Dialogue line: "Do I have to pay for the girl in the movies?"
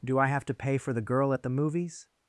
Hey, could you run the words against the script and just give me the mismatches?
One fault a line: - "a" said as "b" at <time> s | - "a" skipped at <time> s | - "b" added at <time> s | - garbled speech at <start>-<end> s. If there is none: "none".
- "in" said as "at" at 1.3 s